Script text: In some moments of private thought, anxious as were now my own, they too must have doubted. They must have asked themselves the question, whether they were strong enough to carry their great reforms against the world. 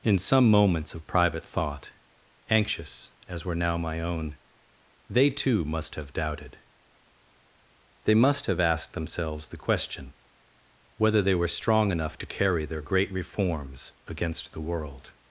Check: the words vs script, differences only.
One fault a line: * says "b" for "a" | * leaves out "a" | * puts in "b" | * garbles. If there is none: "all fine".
all fine